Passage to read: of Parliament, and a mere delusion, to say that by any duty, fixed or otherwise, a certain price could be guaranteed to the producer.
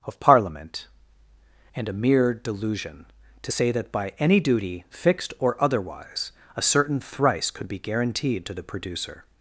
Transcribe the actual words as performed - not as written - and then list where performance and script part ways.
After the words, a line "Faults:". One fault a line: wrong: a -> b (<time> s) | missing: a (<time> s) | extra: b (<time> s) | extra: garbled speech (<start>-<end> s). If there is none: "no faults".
of Parliament, and a mere delusion, to say that by any duty, fixed or otherwise, a certain thrice could be guaranteed to the producer.
Faults:
wrong: price -> thrice (7.0 s)